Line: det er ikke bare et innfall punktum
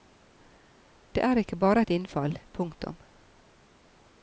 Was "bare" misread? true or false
false